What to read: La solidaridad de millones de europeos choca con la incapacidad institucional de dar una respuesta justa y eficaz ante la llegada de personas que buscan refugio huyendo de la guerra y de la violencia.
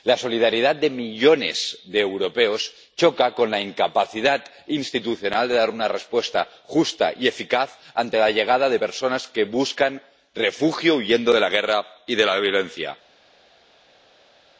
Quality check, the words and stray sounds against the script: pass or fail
pass